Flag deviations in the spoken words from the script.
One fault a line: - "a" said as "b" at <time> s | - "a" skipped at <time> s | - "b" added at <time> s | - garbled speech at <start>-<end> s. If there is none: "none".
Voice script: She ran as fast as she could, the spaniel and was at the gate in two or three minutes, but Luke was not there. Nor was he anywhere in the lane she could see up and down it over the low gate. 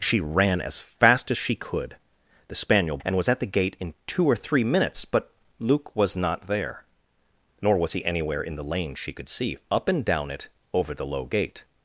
none